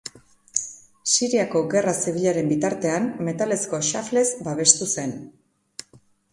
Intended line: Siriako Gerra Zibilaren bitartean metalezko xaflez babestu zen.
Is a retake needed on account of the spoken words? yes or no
no